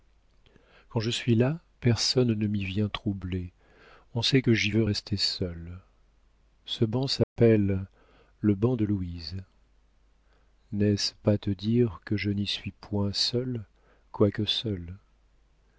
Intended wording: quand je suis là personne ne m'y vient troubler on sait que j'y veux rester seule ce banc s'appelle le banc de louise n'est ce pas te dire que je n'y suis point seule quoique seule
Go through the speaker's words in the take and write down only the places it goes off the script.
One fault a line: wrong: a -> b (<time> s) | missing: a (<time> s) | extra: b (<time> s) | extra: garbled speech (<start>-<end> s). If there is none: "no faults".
no faults